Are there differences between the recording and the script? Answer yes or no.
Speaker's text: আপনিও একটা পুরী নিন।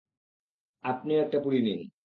no